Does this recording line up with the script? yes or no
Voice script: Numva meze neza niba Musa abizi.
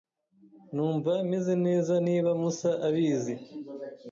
yes